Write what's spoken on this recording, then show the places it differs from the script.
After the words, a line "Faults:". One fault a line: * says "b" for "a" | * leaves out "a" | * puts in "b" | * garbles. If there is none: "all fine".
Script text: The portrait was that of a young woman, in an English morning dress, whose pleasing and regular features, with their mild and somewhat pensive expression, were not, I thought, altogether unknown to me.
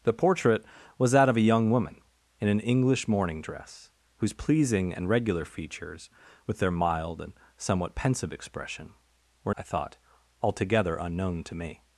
The portrait was that of a young woman, in an English morning dress, whose pleasing and regular features, with their mild and somewhat pensive expression, were I thought, altogether unknown to me.
Faults:
* leaves out "not"